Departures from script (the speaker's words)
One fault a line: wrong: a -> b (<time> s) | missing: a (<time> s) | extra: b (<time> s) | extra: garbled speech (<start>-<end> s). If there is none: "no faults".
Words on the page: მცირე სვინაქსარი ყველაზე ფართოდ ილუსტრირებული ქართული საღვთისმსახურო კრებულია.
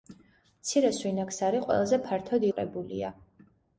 missing: ილუსტრირებული ქართული საღვთისმსახურო (2.5 s)